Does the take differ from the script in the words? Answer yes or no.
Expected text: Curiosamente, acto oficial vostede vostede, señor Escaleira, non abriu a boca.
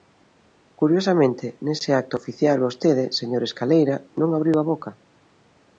yes